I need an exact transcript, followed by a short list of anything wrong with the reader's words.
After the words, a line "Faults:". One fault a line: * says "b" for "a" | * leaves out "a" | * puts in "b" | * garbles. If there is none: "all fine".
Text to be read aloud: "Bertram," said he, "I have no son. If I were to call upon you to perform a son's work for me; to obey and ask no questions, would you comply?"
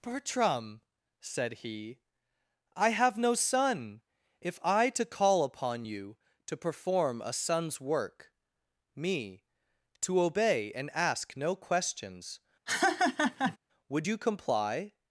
"Bertram," said he, "I have no son. If I to call upon you to perform a son's work me; to obey and ask no questions, would you comply?"
Faults:
* leaves out "were"
* leaves out "for"